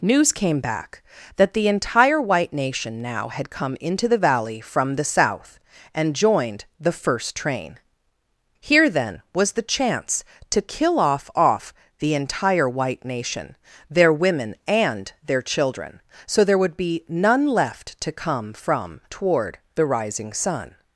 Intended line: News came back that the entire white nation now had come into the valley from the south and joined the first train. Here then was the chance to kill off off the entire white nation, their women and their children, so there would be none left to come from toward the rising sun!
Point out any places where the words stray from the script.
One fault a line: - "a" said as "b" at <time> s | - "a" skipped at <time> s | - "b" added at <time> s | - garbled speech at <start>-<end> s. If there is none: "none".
none